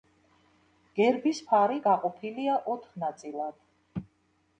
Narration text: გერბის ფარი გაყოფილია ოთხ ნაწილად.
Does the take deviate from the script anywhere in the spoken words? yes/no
no